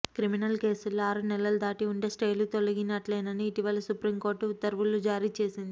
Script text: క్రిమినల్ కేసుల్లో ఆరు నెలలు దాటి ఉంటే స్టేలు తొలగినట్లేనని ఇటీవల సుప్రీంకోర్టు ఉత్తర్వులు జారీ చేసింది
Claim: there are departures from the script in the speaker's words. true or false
false